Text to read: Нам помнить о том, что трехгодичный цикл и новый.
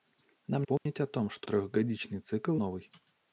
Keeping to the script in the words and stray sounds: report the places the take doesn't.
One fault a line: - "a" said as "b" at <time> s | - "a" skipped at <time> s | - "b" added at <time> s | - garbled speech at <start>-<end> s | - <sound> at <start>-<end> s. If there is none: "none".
- dropout at 0.8-0.9 s